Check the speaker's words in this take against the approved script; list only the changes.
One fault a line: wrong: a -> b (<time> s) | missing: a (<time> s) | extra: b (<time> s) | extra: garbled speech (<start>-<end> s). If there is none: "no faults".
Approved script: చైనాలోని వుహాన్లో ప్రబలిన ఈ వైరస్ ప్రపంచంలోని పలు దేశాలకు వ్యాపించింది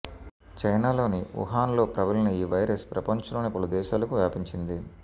no faults